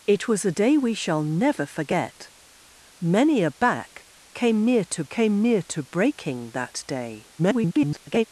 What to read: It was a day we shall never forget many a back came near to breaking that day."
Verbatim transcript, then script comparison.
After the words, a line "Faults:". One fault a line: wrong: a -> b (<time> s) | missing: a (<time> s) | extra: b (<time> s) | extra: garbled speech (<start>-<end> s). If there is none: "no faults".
It was a day we shall never forget many a back came near to came near to breaking that day." [garbled]
Faults:
extra: came near to (5.1 s)
extra: garbled speech (7.4-8.2 s)